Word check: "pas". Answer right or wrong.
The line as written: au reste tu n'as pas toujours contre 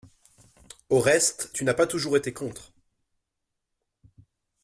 right